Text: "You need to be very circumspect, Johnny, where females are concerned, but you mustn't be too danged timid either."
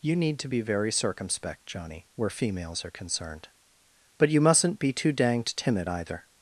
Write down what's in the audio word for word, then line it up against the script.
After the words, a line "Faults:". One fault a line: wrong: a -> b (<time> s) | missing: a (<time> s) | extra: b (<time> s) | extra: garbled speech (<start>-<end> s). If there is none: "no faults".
"You need to be very circumspect, Johnny, where females are concerned, but you mustn't be too danged timid either."
Faults:
no faults